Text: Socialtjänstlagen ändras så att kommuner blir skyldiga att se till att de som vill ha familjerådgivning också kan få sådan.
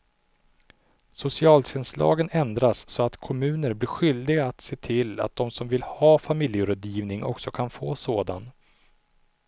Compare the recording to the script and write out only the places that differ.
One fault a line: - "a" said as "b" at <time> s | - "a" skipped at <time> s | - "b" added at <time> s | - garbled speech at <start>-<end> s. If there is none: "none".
none